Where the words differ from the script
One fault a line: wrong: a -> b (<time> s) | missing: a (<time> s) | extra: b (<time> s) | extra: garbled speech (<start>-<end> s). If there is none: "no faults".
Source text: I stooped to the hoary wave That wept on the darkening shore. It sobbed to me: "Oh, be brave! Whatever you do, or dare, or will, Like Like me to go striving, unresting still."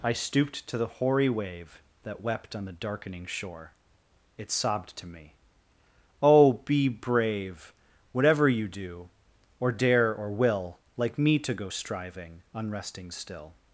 missing: Like (11.2 s)